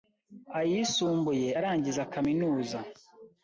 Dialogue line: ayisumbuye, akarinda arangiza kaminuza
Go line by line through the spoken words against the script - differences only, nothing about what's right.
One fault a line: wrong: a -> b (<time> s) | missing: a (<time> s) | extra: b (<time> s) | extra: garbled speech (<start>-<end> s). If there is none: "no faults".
missing: akarinda (1.5 s)